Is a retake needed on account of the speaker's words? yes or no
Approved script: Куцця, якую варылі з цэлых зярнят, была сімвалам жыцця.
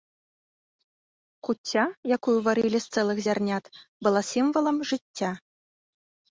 no